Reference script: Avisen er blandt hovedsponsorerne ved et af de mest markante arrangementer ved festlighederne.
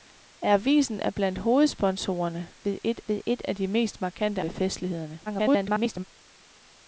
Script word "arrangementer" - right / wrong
wrong